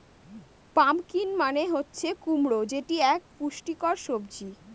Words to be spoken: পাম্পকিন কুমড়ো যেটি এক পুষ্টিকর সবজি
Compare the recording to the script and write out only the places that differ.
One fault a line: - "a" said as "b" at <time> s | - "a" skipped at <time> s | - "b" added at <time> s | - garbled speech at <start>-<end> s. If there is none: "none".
- "মানে হচ্ছে" added at 1.4 s